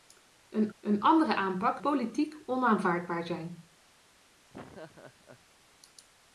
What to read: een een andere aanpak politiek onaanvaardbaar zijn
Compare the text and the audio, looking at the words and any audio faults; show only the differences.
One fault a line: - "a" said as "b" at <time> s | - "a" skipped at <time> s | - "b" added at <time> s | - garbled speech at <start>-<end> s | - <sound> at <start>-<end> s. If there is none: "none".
- laugh at 4.5-5.4 s